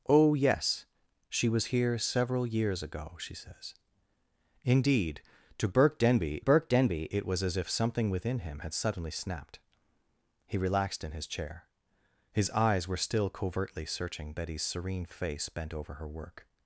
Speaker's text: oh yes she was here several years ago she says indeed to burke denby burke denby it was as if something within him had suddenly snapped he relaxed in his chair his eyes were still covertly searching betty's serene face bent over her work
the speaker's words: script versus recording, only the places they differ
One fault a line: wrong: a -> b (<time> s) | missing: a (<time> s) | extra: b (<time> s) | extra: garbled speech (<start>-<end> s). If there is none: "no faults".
no faults